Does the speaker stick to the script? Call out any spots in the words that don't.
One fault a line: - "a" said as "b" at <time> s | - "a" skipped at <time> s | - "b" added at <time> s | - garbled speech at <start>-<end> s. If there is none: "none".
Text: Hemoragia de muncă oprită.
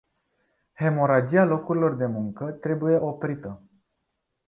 - "locurilor" added at 1.4 s
- "trebuie" added at 2.5 s